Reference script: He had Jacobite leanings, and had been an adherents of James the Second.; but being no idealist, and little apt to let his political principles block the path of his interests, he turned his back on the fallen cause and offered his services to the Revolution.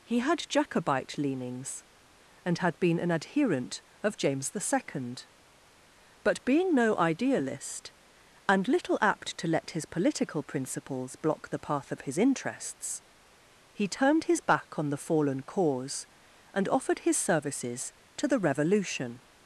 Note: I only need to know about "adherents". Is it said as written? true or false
false